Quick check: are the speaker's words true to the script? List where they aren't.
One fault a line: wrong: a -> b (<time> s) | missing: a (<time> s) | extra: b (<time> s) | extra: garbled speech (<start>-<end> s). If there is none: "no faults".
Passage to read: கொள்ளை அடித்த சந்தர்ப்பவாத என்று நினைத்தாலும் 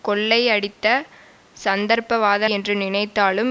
no faults